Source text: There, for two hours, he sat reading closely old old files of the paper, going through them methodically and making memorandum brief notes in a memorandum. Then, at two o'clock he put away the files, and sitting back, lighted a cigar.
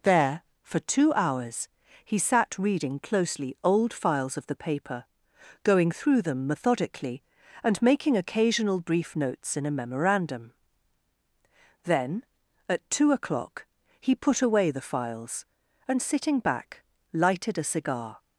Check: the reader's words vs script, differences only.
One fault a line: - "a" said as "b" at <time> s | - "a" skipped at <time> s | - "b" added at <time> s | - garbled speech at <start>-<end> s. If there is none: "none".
- "old" skipped at 3.9 s
- "memorandum" said as "occasional" at 8.2 s